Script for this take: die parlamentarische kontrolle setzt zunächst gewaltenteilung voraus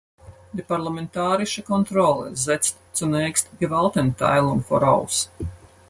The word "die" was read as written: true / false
true